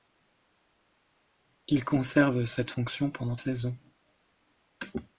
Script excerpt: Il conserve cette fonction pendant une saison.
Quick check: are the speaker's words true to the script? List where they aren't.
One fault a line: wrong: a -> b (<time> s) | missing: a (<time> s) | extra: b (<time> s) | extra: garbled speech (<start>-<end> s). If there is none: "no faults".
missing: une (3.3 s)